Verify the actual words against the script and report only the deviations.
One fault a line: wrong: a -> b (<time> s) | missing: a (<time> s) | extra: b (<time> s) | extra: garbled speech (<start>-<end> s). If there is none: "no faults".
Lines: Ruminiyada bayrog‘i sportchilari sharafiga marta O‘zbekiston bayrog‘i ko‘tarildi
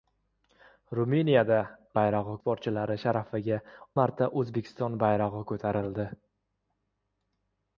no faults